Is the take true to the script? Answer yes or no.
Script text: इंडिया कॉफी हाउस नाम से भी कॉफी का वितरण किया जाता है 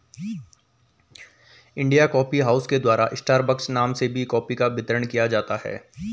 no